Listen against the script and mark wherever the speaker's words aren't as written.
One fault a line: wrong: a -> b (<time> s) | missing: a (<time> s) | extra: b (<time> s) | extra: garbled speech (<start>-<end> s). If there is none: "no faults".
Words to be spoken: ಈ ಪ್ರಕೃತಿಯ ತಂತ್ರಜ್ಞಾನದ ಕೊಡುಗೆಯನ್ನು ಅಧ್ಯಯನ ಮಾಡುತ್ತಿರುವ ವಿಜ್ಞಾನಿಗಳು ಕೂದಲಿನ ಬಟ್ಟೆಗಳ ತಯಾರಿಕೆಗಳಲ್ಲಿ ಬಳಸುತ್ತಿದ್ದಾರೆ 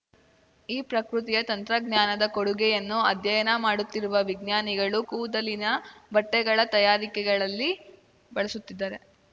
no faults